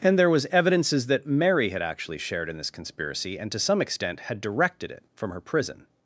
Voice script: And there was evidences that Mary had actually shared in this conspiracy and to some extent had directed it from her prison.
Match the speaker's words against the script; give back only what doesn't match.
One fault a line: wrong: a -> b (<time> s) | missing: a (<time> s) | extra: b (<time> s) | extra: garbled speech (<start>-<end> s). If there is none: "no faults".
no faults